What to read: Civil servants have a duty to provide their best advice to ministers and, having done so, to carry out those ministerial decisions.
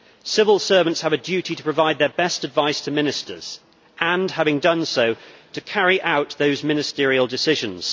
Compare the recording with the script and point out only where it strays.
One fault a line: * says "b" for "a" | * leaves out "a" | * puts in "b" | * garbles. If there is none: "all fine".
all fine